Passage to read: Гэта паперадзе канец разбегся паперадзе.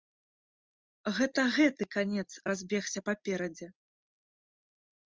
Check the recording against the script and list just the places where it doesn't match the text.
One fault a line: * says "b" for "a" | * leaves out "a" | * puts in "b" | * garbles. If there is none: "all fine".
* says "гэты" for "паперадзе"